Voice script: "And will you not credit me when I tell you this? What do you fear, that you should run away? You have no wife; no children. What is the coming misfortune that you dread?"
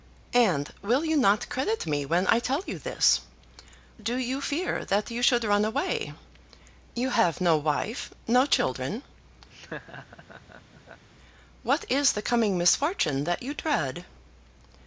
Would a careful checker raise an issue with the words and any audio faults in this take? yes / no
yes